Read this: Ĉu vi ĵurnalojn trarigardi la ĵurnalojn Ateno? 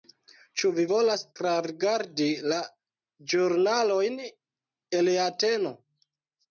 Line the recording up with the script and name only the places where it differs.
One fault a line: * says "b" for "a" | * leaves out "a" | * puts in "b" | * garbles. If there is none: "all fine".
* says "volas" for "ĵurnalojn"
* puts in "el"